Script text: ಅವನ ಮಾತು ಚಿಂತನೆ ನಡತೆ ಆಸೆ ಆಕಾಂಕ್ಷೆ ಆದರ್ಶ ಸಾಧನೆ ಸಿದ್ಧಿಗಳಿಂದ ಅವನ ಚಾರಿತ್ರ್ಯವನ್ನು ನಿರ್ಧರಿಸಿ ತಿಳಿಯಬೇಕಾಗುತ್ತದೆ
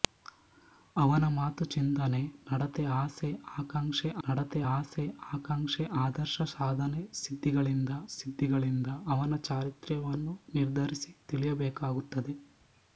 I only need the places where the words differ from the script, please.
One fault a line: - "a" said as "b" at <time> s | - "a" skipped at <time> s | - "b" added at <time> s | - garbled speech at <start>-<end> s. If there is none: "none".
- "ನಡತೆ ಆಸೆ ಆಕಾಂಕ್ಷೆ" added at 4.2 s
- "ಸಿದ್ಧಿಗಳಿಂದ" added at 8.1 s